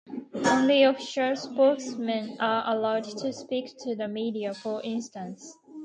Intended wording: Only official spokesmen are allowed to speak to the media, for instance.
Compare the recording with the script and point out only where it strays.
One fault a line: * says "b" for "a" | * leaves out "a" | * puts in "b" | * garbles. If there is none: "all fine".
all fine